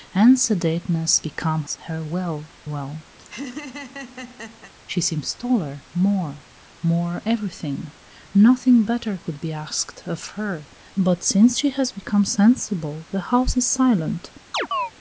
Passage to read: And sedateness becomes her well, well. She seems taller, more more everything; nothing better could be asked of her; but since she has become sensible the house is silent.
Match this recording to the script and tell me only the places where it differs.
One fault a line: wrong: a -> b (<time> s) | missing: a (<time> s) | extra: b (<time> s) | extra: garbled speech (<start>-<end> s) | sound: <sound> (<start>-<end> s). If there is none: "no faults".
sound: laugh (3.2-4.7 s)
sound: chirp (14.5-14.9 s)